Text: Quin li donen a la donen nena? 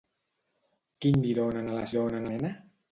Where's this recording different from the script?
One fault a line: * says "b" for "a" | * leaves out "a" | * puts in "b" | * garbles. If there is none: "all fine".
all fine